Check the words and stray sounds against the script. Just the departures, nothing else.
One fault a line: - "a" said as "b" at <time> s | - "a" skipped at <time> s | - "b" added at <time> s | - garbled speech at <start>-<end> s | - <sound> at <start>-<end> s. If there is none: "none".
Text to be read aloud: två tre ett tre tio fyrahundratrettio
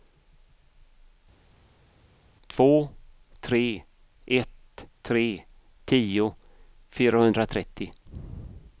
none